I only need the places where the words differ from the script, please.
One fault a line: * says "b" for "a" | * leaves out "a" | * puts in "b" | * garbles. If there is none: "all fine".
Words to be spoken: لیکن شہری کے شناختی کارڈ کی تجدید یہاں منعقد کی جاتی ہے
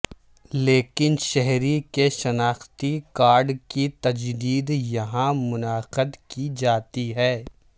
all fine